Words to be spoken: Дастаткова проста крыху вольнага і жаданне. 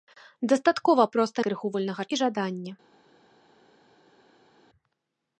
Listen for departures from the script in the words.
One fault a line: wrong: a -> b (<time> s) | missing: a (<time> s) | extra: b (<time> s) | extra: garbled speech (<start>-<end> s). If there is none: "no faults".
no faults